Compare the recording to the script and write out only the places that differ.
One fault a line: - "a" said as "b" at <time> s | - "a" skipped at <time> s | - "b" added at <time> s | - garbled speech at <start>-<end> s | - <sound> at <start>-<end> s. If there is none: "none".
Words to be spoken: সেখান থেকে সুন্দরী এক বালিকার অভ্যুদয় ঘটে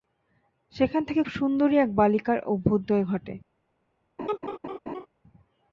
- laugh at 4.2-5.1 s